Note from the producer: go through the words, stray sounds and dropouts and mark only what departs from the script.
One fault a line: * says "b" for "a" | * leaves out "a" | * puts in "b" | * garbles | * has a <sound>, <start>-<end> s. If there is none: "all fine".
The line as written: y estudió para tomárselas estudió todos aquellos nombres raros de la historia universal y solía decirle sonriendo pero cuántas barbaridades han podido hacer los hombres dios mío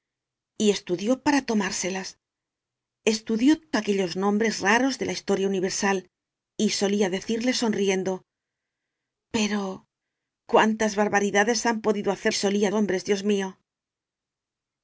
* leaves out "todos"
* says "solía" for "los"